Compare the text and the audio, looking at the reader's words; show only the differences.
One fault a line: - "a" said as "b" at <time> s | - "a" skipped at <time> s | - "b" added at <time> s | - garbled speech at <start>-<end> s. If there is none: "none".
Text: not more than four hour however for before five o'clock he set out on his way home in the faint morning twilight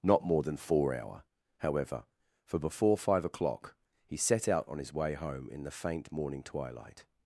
none